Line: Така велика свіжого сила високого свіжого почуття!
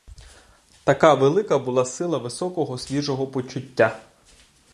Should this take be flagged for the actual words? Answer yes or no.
yes